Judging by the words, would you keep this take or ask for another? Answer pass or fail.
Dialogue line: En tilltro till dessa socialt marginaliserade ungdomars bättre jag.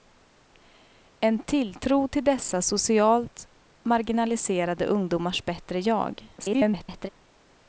fail